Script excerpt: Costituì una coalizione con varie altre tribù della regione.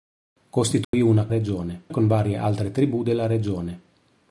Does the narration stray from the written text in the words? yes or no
yes